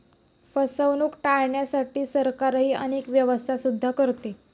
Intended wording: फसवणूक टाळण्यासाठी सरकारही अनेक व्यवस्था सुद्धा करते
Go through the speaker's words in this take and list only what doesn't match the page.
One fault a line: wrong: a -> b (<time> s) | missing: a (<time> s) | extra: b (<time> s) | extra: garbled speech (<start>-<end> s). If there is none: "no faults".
no faults